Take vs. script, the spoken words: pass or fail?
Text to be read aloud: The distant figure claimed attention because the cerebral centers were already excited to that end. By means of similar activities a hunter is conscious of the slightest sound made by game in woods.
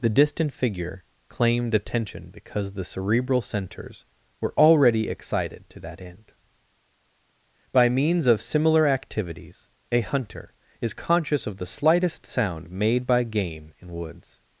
pass